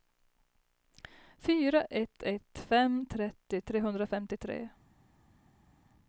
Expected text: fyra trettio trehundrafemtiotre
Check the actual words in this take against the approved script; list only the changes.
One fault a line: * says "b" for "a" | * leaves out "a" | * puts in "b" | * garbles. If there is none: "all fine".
* puts in "ett ett fem"